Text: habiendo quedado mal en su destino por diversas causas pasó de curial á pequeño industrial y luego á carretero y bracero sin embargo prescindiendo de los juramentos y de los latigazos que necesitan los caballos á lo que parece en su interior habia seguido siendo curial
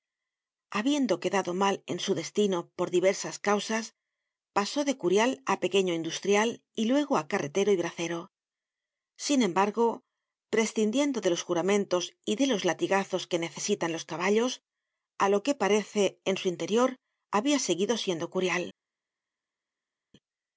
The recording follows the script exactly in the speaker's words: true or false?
true